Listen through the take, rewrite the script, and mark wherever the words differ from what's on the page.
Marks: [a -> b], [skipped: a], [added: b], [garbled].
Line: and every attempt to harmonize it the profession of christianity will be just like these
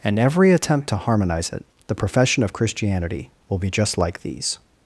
and every attempt to harmonize it the profession of christianity will be just like these